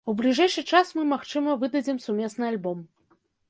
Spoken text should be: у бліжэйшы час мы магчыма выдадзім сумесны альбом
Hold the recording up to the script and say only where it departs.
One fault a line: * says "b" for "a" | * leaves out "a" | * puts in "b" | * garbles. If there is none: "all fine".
all fine